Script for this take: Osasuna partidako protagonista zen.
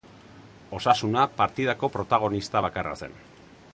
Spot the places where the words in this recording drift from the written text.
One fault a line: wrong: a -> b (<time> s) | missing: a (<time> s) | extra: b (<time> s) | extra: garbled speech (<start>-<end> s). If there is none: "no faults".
extra: bakarra (2.7 s)